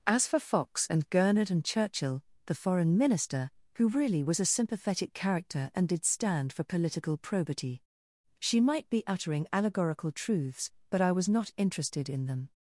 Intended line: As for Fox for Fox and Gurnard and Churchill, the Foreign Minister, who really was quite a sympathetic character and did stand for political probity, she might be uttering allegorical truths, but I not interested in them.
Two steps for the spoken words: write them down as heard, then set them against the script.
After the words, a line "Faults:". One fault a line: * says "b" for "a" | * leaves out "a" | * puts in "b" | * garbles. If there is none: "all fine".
As for Fox and Gurnard and Churchill, the Foreign Minister, who really was a sympathetic character and did stand for political probity, she might be uttering allegorical truths, but I was not interested in them.
Faults:
* leaves out "for Fox"
* leaves out "quite"
* puts in "was"